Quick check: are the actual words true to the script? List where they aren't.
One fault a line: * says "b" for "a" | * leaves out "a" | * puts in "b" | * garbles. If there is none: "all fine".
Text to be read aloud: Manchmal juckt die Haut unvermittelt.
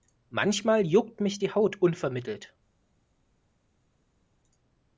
* puts in "mich"